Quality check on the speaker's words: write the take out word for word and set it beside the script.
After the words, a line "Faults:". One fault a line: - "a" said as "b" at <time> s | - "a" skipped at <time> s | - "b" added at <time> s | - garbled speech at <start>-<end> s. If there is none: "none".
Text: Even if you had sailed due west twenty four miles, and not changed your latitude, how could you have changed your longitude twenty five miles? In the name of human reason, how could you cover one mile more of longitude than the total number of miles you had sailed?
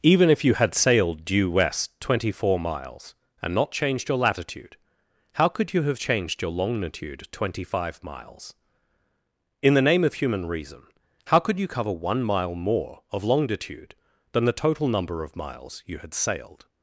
Even if you had sailed due west twenty four miles, and not changed your latitude, how could you have changed your longitude twenty five miles? In the name of human reason, how could you cover one mile more of longitude than the total number of miles you had sailed?
Faults:
none